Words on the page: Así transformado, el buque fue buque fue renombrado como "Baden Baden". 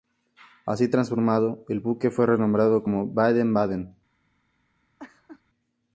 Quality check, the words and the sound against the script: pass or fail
fail